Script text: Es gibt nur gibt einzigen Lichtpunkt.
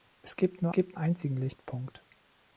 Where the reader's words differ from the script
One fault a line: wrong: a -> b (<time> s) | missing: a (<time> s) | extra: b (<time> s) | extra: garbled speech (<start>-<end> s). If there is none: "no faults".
no faults